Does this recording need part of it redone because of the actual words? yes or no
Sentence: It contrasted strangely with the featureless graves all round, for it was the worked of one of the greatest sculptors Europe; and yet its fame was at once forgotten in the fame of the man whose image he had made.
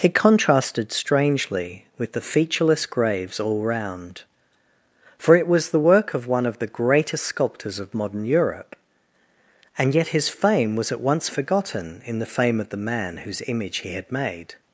yes